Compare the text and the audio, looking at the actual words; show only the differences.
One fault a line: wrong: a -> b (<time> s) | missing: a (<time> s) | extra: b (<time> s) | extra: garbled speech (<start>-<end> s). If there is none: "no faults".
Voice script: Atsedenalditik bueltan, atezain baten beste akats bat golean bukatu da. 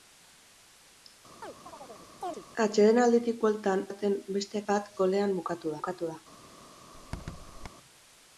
missing: atezain (3.8 s)
missing: akats (4.6 s)
extra: bukatu (5.8 s)